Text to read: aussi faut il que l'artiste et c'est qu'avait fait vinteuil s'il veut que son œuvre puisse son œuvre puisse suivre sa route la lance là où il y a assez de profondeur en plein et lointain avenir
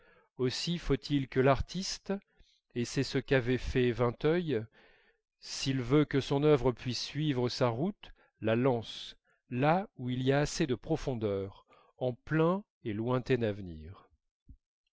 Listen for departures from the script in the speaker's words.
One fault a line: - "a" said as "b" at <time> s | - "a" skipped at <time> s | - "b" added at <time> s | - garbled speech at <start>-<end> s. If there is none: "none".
- "ce" added at 3.0 s
- "son œuvre puisse" skipped at 7.0 s